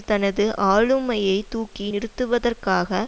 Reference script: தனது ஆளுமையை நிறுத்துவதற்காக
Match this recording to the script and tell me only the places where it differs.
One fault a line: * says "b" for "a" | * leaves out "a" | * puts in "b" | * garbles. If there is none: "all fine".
* puts in "தூக்கி"